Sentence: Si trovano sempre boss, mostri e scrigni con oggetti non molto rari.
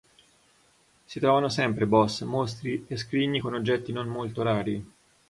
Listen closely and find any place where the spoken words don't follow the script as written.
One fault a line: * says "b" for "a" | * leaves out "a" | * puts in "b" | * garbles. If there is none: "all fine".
all fine